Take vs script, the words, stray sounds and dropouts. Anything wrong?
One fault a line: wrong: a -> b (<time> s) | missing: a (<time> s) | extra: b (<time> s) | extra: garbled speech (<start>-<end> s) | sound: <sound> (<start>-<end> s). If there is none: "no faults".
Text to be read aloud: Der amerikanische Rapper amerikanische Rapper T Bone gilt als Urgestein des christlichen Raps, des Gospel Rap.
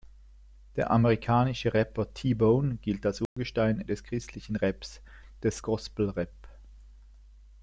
missing: amerikanische Rapper (2.1 s)
sound: dropout (3.3-3.4 s)